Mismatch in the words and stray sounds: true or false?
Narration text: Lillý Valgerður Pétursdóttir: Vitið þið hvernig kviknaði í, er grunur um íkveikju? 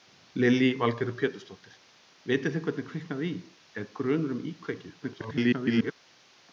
true